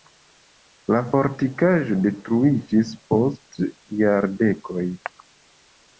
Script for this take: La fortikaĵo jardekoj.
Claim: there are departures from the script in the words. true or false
true